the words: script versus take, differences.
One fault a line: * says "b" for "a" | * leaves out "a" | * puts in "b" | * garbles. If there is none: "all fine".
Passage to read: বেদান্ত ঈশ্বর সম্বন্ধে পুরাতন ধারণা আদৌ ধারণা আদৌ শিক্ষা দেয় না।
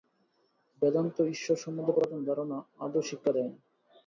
* leaves out "ধারণা আদৌ"